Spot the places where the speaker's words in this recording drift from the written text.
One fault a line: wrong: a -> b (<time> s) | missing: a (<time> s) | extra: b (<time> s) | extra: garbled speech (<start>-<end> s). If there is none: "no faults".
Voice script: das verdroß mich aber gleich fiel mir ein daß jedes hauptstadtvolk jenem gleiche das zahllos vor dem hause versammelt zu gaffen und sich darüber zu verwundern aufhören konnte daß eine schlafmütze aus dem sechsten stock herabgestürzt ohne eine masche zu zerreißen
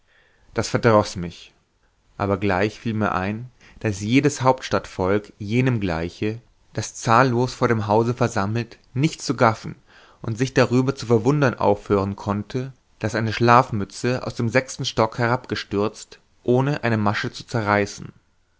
extra: nicht (8.9 s)